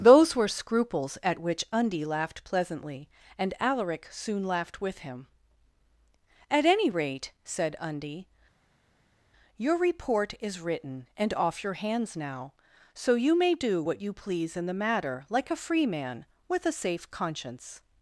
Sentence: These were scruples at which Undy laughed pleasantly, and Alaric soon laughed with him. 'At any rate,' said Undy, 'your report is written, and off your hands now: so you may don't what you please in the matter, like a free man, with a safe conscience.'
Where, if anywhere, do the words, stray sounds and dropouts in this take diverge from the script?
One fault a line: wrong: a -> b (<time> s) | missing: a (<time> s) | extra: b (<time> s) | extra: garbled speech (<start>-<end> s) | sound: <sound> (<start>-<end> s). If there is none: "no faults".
wrong: These -> Those (0.0 s)
wrong: don't -> do (13.5 s)